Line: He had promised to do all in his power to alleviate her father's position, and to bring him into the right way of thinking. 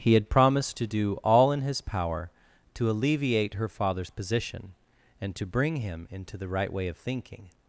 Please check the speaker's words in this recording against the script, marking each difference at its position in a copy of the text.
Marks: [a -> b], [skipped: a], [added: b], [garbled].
He had promised to do all in his power to alleviate her father's position, and to bring him into the right way of thinking.